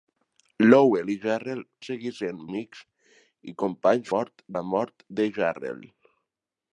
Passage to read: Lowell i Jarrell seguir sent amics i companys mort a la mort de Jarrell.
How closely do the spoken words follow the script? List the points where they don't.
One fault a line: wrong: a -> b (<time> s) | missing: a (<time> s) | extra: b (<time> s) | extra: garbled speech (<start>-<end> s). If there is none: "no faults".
no faults